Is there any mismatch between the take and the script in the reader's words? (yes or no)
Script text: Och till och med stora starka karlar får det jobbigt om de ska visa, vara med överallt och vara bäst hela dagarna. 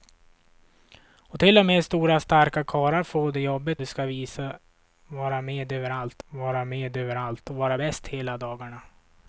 yes